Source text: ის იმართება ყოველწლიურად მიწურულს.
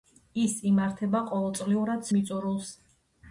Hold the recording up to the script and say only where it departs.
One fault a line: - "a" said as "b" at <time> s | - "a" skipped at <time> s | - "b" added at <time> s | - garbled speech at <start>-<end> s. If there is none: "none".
none